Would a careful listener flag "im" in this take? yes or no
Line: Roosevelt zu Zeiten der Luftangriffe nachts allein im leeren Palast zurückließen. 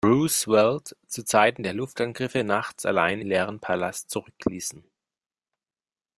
yes